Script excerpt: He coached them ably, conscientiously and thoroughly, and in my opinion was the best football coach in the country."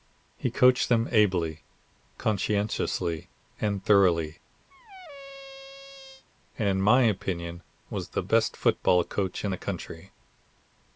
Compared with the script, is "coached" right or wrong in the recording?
right